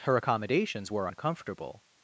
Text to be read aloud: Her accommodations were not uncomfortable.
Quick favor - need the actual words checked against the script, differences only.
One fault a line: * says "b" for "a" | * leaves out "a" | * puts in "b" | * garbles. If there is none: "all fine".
* leaves out "not"